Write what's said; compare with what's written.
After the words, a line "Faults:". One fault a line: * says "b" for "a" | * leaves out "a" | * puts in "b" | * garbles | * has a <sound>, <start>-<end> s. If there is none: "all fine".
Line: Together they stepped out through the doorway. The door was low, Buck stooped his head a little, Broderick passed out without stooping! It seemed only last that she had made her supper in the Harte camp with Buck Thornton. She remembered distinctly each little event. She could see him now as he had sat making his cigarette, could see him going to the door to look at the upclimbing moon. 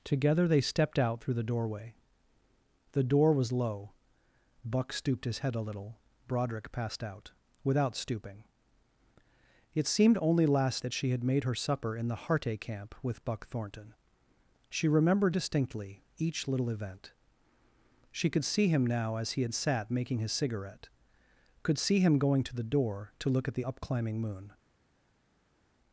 Together they stepped out through the doorway. The door was low, Buck stooped his head a little, Broderick passed out without stooping! It seemed only last that she had made her supper in the Harte camp with Buck Thornton. She remembered distinctly each little event. She could see him now as he had sat making his cigarette, could see him going to the door to look at the upclimbing moon.
Faults:
all fine